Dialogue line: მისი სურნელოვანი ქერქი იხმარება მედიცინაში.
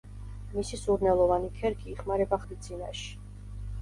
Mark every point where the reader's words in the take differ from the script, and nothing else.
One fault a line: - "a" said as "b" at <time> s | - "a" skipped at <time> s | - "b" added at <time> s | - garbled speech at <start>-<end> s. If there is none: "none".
none